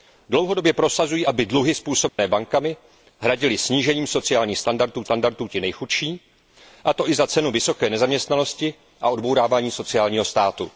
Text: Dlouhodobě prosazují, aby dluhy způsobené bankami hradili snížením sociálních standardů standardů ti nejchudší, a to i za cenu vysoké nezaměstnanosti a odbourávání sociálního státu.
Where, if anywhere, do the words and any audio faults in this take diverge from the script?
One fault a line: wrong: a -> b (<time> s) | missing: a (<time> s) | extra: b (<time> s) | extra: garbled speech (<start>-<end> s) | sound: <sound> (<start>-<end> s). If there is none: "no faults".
sound: dropout (2.1-2.2 s)